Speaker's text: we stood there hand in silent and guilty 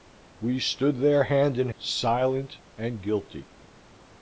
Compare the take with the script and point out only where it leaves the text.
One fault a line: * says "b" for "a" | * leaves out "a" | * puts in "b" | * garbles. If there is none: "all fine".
all fine